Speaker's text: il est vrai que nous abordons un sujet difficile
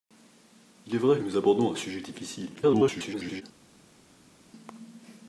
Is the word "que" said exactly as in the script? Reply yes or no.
no